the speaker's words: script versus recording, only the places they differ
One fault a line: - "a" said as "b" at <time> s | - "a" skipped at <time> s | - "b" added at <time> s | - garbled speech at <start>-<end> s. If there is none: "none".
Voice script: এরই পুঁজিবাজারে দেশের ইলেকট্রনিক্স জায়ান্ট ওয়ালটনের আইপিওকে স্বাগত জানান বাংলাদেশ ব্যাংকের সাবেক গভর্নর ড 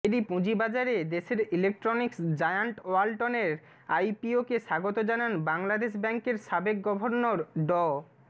none